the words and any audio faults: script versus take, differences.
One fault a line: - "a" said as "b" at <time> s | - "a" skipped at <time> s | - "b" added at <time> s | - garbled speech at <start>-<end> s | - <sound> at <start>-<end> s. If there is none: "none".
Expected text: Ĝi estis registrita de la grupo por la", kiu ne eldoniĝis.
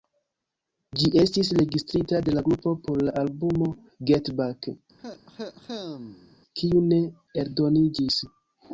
- "albumo Get Back" added at 3.2 s
- cough at 5.0-6.4 s